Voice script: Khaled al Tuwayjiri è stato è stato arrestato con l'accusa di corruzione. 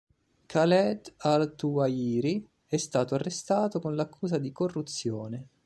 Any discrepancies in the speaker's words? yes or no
yes